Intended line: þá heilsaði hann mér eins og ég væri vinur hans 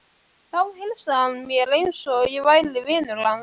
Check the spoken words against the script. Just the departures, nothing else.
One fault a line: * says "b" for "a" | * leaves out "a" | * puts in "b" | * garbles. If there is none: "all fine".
all fine